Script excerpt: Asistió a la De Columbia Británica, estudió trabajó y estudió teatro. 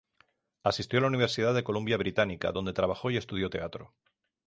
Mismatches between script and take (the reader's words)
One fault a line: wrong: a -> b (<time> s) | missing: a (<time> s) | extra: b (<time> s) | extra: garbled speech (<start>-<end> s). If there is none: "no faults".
extra: Universidad (1.1 s)
wrong: estudió -> donde (2.5 s)